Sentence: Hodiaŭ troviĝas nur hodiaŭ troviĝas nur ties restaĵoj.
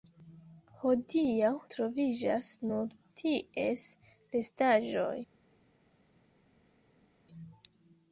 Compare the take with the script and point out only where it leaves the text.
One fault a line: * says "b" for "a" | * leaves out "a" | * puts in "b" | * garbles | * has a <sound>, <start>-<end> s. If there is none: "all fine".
* leaves out "hodiaŭ troviĝas nur"